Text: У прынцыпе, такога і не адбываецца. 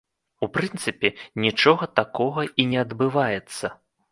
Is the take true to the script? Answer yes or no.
no